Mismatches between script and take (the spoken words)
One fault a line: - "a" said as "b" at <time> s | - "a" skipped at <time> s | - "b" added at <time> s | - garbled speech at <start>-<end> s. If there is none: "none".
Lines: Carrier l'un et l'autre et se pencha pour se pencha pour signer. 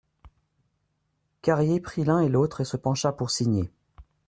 - "prit" added at 1.8 s
- "se pencha pour" skipped at 3.3 s